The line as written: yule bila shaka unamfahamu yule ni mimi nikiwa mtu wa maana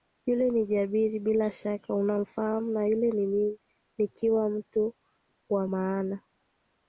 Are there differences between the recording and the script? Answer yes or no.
yes